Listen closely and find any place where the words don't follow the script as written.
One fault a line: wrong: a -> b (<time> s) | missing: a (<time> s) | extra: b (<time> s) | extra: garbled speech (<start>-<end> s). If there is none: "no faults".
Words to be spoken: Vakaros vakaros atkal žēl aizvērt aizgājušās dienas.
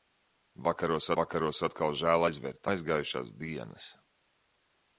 no faults